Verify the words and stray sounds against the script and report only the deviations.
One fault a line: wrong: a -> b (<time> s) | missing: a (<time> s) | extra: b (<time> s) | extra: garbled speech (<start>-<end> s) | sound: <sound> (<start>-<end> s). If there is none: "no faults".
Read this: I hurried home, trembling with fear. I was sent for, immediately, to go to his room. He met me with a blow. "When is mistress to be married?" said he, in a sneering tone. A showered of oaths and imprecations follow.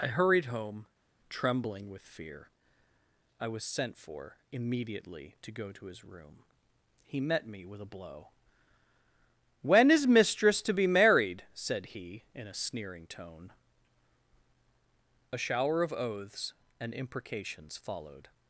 wrong: showered -> shower (15.4 s)
wrong: follow -> followed (17.8 s)